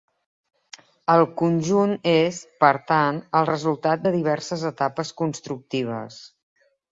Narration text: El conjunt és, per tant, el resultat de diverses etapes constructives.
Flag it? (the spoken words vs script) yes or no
no